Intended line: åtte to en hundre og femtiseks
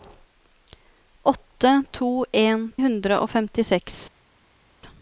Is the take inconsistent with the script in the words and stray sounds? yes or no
no